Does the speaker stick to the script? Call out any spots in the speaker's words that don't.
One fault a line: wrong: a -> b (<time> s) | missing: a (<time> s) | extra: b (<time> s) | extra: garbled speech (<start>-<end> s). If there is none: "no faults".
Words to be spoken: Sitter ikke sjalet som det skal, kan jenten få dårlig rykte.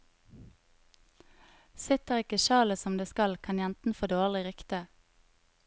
no faults